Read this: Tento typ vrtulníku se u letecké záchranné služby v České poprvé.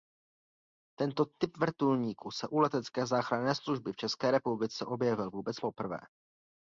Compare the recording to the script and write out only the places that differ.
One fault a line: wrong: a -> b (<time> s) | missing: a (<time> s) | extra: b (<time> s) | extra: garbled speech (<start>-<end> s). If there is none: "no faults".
extra: republice objevil vůbec (4.3 s)